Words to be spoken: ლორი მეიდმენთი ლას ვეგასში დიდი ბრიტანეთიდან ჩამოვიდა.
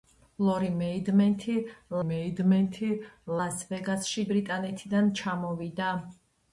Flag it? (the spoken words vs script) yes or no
yes